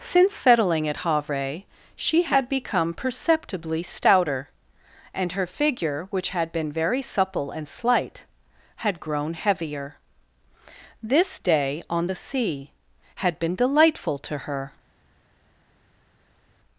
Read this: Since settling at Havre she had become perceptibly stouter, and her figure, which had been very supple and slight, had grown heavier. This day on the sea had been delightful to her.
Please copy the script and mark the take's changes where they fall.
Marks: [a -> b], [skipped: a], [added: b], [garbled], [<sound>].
Since settling at Havre she had become perceptibly stouter, and her figure, which had been very supple and slight, had grown heavier. This day on the sea had been delightful to her.